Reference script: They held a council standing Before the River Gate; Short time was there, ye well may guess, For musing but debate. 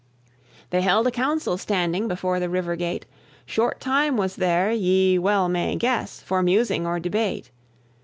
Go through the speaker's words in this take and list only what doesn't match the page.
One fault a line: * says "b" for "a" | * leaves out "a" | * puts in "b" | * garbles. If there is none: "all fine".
* says "or" for "but"